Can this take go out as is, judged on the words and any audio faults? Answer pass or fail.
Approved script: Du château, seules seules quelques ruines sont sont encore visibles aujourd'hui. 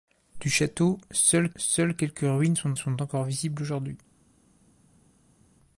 pass